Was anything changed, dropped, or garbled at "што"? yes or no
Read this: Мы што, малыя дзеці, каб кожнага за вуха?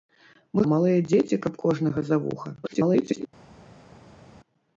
yes